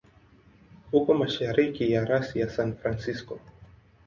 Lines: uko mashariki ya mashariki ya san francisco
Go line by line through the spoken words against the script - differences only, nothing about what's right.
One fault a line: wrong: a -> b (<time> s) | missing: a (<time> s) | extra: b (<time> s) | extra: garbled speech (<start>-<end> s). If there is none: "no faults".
wrong: mashariki -> rasi (2.0 s)